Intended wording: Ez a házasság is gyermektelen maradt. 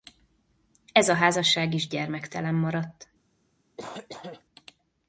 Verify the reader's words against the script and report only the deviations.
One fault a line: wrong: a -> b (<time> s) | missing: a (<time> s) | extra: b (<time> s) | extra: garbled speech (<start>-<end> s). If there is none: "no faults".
no faults